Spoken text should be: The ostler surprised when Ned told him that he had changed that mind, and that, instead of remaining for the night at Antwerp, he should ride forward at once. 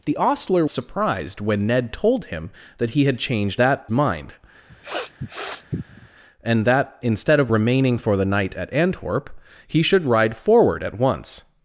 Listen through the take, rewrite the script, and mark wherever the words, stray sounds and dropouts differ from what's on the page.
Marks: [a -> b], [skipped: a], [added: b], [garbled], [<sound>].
The ostler surprised when Ned told him that he had changed that mind, [sniff] and that, instead of remaining for the night at Antwerp, he should ride forward at once.